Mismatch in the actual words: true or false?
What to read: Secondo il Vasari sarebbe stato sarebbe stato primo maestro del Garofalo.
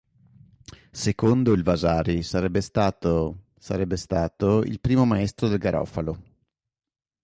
true